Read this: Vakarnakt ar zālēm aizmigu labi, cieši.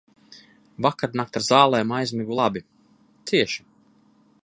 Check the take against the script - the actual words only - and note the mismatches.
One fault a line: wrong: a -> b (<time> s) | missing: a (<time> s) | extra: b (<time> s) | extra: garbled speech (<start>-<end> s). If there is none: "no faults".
no faults